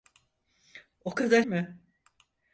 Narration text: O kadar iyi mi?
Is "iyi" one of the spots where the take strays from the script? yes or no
yes